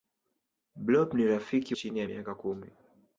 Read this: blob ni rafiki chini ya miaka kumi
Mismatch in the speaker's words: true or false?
false